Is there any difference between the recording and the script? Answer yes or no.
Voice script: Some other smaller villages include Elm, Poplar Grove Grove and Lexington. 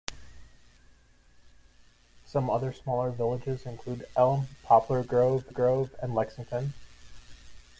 no